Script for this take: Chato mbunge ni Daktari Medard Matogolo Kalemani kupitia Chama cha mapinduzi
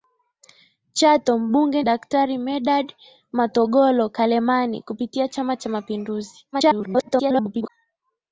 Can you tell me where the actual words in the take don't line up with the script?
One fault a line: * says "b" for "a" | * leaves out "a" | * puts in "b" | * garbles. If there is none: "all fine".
* leaves out "ni"
* garbles